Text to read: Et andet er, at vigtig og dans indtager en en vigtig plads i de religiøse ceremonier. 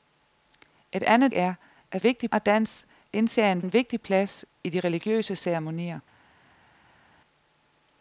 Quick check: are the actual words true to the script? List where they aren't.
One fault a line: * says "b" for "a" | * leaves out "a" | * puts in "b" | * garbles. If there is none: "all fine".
all fine